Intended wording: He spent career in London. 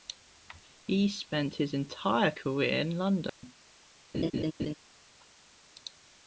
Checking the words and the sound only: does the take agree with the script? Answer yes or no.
no